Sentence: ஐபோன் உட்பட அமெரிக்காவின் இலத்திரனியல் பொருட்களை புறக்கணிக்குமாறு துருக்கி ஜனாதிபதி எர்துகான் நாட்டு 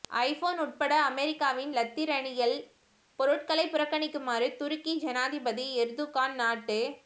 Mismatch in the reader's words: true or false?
false